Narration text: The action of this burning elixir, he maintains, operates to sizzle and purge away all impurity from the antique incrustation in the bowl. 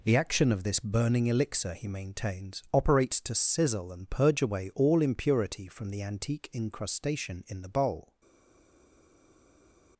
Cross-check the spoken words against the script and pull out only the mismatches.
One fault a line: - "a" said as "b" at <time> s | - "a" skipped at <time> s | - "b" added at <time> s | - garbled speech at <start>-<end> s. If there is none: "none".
none